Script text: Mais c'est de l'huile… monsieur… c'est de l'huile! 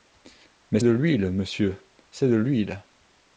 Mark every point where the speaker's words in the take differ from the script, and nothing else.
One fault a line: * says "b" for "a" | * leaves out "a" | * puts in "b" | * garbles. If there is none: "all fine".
* leaves out "c'est"